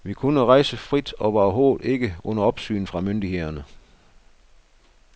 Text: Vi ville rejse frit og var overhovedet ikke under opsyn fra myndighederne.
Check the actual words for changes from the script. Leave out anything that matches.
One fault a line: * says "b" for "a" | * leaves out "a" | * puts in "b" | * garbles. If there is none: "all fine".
* says "kunne" for "ville"